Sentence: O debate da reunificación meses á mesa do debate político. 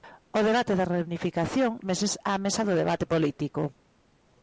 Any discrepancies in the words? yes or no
no